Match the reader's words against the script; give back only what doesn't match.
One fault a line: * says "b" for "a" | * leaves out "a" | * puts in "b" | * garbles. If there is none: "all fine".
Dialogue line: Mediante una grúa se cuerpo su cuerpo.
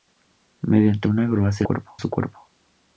all fine